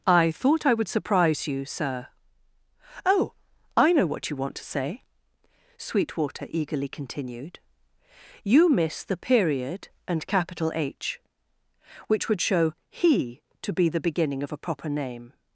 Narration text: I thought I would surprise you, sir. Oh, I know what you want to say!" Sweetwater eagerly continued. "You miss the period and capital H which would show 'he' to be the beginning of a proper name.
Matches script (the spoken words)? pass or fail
pass